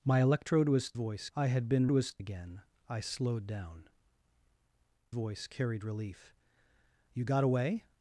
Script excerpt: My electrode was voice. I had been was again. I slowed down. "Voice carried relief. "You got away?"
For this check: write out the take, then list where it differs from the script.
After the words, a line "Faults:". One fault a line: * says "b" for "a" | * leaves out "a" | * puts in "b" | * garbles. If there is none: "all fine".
My electrode was voice. I had been was again. I slowed down. "Voice carried relief. "You got away?"
Faults:
all fine